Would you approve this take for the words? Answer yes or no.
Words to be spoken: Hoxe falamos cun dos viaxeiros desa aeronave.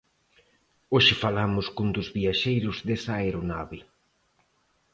yes